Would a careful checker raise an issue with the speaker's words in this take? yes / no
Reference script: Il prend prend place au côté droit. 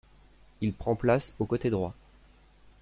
yes